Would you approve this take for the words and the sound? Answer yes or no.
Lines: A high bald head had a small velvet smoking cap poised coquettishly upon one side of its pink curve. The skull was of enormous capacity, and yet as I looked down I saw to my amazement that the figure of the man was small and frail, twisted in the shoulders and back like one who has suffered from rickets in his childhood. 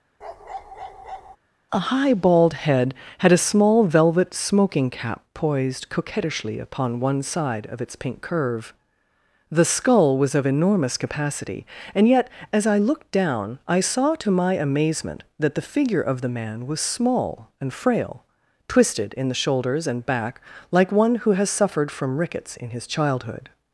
no